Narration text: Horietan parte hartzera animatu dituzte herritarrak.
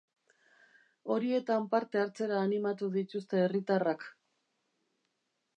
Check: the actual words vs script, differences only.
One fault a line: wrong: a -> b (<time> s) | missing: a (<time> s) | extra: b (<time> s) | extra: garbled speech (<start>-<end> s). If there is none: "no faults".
no faults